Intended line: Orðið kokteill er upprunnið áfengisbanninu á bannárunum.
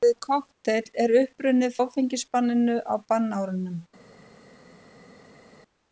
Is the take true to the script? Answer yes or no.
yes